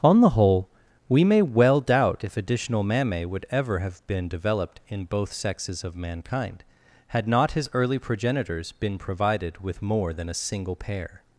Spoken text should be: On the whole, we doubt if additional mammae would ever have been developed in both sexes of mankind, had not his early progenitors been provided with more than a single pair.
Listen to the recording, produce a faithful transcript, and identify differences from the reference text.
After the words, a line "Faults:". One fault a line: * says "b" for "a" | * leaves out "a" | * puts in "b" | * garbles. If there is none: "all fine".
On the whole, we may well doubt if additional mammae would ever have been developed in both sexes of mankind, had not his early progenitors been provided with more than a single pair.
Faults:
* puts in "may well"